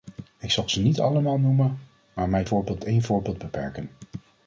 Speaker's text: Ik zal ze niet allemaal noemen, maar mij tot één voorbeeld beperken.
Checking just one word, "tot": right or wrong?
wrong